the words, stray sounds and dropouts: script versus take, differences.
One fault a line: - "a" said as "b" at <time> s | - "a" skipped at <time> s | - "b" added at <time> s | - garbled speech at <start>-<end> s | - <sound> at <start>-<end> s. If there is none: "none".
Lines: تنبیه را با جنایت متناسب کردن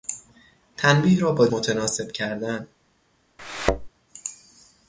- "جنایت" skipped at 1.5 s
- thud at 3.4-3.9 s